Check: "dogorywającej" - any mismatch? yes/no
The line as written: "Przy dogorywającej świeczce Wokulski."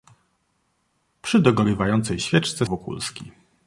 no